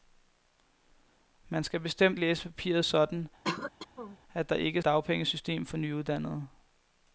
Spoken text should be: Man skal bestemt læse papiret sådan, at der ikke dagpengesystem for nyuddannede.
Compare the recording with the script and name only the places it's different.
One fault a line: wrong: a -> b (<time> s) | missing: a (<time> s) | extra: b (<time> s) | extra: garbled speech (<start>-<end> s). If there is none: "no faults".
no faults